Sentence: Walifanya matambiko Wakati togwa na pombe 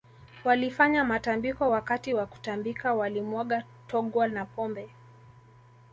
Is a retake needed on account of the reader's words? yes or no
yes